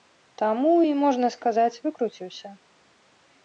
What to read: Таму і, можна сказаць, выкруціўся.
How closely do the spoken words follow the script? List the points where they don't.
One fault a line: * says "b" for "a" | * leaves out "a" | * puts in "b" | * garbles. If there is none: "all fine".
all fine